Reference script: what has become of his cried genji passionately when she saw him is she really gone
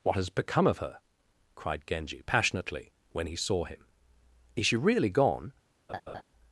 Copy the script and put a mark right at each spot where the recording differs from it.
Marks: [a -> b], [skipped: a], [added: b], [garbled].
what has become of [his -> her] cried genji passionately when [she -> he] saw him is she really gone